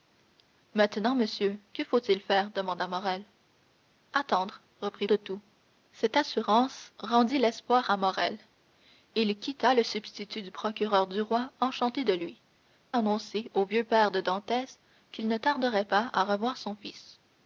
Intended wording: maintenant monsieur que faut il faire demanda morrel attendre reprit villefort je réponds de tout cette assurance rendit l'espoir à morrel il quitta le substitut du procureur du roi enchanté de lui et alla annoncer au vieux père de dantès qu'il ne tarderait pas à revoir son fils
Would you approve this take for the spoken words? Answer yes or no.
no